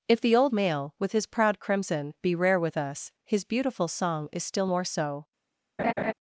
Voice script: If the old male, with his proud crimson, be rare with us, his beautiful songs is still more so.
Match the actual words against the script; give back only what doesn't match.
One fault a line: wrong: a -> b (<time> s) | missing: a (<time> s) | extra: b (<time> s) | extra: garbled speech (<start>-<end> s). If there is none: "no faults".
wrong: songs -> song (3.9 s)